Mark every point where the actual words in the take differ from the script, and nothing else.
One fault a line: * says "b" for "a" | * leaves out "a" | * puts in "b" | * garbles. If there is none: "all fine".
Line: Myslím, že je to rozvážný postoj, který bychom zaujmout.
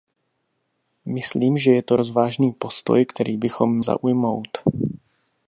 all fine